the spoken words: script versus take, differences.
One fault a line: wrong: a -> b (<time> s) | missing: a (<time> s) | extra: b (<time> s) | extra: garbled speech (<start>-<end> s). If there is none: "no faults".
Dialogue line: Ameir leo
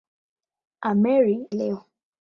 no faults